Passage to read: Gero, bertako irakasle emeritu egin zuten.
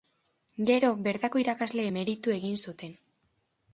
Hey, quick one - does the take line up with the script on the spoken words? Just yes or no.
yes